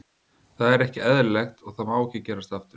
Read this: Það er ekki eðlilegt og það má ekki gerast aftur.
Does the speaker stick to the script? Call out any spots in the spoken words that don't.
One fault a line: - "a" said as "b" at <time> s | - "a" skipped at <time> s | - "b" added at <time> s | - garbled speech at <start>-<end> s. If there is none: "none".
none